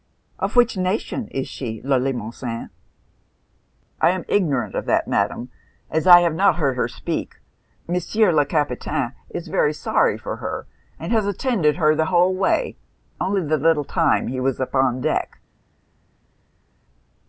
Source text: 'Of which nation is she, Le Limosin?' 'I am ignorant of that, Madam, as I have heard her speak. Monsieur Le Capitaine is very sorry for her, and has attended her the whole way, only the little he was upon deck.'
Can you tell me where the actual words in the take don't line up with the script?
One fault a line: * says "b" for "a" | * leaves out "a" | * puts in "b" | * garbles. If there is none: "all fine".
* puts in "not"
* puts in "time"